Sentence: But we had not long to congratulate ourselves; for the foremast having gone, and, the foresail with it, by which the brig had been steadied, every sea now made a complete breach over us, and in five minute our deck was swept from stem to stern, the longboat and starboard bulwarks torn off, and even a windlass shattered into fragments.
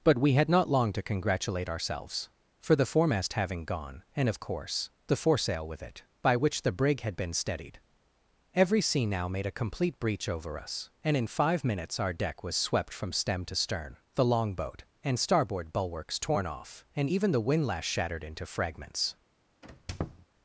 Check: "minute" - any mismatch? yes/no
yes